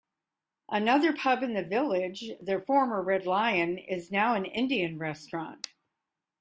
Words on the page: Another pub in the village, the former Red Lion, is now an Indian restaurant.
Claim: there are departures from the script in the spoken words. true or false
false